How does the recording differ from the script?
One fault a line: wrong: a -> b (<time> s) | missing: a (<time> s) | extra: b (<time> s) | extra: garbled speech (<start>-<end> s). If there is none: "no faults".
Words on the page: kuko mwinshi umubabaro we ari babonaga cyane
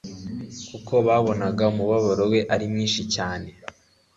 wrong: mwinshi -> babonaga (1.1 s)
wrong: babonaga -> mwinshi (2.7 s)